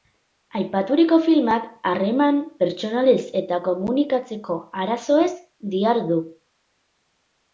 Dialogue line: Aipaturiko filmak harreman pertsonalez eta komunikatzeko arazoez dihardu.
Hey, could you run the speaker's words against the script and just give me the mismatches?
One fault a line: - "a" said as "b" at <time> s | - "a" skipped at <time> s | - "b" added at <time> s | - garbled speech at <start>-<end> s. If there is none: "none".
none